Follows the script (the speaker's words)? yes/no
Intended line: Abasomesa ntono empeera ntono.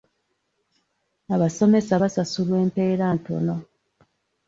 no